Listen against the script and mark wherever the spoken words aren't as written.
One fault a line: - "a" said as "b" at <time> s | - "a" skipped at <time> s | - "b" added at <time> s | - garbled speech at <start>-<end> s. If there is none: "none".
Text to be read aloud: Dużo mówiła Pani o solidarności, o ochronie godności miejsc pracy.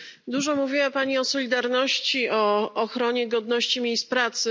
none